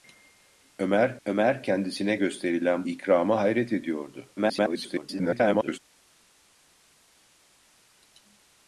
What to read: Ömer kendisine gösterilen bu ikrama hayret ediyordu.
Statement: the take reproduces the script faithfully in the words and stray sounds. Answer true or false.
false